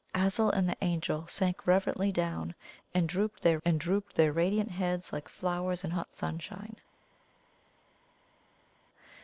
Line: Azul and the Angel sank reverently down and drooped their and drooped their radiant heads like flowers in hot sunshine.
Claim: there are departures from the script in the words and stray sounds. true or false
false